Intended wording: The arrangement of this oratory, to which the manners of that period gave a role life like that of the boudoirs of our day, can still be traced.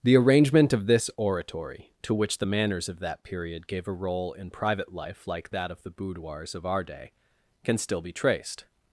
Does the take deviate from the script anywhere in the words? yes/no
yes